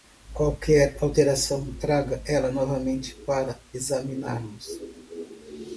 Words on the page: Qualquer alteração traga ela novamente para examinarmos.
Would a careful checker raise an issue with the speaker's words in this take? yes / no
no